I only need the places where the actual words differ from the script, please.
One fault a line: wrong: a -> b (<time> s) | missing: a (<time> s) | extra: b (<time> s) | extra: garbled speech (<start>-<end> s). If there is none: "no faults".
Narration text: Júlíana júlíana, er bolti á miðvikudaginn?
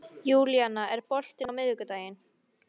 missing: júlíana (0.9 s)